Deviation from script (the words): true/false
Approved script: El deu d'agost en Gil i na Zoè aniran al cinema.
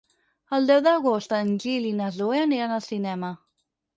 false